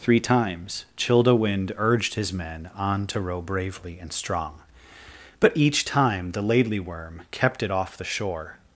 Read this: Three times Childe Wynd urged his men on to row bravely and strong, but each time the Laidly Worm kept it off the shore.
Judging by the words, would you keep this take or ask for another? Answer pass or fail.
pass